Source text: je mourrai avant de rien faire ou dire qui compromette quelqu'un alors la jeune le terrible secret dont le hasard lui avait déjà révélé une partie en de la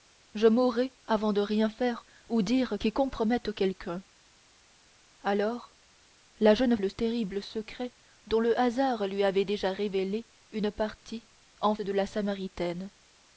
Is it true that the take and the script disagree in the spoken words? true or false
false